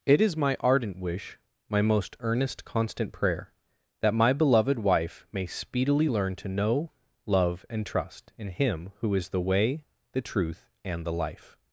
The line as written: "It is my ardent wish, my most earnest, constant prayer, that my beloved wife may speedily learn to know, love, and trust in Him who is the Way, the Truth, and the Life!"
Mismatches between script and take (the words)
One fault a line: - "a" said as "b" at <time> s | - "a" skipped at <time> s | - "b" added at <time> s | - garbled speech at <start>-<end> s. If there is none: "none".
none